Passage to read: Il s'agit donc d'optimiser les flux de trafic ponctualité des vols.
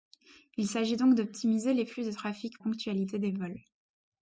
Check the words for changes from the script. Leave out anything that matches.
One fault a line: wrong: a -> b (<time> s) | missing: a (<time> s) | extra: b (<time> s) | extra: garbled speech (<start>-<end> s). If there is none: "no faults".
no faults